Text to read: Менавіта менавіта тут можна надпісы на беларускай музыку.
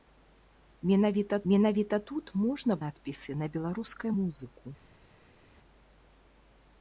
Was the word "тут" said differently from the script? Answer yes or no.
no